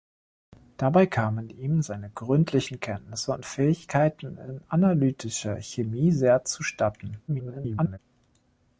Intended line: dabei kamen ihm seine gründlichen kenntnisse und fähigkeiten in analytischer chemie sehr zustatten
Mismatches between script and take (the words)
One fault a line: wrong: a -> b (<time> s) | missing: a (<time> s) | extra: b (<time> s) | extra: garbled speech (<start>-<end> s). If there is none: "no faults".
extra: garbled speech (7.3-8.0 s)